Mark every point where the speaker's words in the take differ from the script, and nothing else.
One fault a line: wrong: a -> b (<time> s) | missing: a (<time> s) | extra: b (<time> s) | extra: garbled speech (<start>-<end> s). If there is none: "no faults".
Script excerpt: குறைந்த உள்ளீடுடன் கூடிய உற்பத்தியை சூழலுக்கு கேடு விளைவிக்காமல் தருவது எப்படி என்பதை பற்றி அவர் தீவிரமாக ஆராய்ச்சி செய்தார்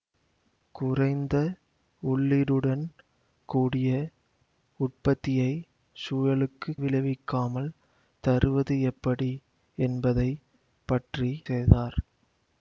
missing: கேடு (6.7 s)
missing: அவர் தீவிரமாக ஆராய்ச்சி (11.3 s)